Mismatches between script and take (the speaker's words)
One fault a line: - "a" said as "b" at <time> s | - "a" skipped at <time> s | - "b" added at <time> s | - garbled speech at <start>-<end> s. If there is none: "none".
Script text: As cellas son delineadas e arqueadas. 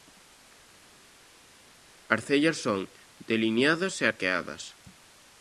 none